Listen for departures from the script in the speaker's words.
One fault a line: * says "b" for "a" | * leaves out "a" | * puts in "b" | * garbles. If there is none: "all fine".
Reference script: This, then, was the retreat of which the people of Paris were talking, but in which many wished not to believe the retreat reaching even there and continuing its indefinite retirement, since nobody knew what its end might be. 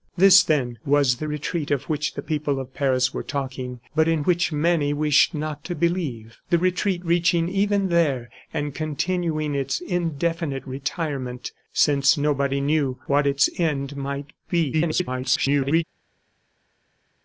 * garbles